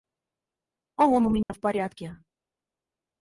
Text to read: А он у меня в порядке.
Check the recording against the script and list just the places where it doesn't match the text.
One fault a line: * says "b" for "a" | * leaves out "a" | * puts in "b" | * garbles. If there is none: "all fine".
all fine